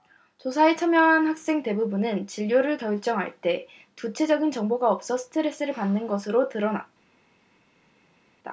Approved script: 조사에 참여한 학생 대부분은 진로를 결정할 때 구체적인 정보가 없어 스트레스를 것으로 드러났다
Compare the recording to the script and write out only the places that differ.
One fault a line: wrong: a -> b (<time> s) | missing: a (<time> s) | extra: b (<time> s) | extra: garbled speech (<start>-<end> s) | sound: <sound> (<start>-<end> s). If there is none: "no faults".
extra: 받는 (5.7 s)